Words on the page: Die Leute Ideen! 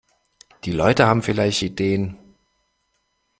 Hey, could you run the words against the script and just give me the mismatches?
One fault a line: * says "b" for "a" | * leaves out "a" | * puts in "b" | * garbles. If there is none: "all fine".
* puts in "haben vielleicht"